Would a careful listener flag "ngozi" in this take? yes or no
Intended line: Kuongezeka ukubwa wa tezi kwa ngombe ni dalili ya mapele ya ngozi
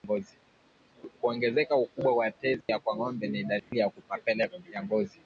no